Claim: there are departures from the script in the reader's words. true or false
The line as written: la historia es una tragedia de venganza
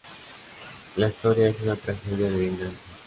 false